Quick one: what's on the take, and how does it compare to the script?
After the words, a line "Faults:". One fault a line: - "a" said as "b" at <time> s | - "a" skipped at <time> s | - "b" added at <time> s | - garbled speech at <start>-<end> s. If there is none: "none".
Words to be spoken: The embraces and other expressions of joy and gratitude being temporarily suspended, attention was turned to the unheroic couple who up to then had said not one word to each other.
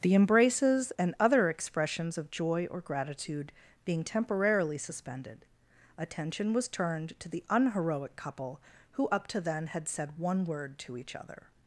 The embraces and other expressions of joy or gratitude being temporarily suspended, attention was turned to the unheroic couple who up to then had said one word to each other.
Faults:
- "and" said as "or" at 2.7 s
- "not" skipped at 10.2 s